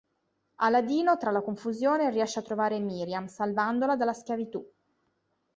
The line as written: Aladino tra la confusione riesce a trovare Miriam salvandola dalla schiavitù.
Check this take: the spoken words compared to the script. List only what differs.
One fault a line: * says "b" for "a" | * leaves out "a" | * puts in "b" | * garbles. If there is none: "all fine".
all fine